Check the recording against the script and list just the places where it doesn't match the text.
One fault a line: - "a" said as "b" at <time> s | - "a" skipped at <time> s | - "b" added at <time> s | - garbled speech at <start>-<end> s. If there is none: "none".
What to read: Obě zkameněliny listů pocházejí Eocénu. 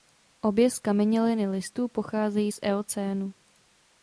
- "z" added at 2.5 s